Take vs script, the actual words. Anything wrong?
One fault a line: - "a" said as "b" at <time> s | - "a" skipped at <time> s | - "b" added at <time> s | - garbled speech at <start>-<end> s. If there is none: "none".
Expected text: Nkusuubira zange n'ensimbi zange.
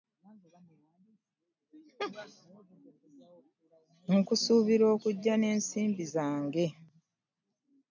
- "zange" said as "okujja" at 5.0 s